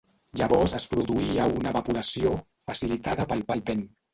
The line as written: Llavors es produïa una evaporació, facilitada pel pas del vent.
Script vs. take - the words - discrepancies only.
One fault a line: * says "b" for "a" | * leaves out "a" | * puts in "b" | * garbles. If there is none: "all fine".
* leaves out "pas"